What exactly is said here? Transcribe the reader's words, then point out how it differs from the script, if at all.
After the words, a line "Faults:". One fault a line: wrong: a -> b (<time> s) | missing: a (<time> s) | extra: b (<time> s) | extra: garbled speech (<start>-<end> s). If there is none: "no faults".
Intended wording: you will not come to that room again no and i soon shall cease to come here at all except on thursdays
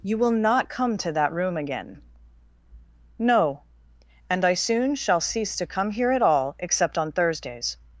you will not come to that room again no and i soon shall cease to come here at all except on thursdays
Faults:
no faults